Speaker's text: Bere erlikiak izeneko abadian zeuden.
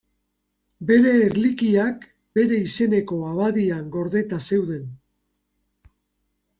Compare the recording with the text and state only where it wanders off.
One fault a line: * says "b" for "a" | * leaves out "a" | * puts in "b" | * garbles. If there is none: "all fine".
* puts in "bere"
* puts in "gordeta"